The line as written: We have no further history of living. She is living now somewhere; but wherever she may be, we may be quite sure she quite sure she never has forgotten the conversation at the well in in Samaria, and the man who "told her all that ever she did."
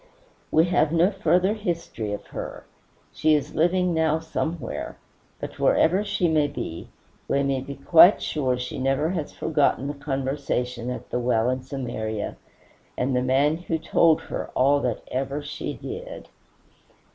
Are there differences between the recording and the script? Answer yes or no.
yes